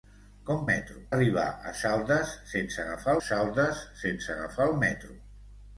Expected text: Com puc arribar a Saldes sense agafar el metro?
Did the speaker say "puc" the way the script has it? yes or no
no